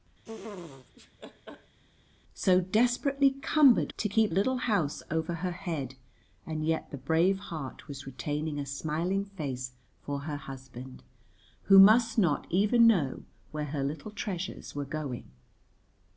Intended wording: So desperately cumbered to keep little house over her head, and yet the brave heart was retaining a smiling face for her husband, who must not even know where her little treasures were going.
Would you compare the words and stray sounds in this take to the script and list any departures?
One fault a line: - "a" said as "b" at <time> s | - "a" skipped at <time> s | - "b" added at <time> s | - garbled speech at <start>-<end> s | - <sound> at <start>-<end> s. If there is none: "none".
- laugh at 0.2-1.8 s